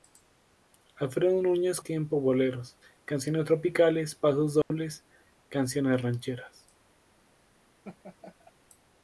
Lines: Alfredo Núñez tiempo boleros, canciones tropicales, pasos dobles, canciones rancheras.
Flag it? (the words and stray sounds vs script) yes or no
yes